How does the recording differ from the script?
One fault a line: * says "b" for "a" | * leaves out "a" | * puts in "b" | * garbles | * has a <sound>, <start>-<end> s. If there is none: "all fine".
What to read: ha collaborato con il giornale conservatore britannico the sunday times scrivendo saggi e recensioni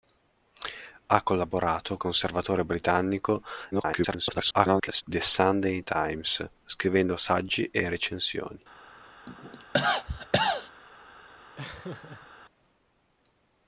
* leaves out "con il giornale"
* garbles
* has a cough, 9.3-10.7 s
* has a laugh, 11.6-12.3 s